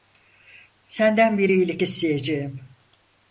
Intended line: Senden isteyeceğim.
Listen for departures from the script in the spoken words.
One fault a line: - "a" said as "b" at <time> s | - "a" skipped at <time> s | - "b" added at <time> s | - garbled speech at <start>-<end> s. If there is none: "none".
- "bir iyilik" added at 1.4 s